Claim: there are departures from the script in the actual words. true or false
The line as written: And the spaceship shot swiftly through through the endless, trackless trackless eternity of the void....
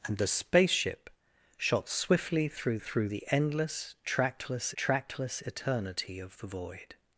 false